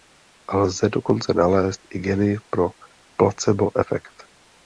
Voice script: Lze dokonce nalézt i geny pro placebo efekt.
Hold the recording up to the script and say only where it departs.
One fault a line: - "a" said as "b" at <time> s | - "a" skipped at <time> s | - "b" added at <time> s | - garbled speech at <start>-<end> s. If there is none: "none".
none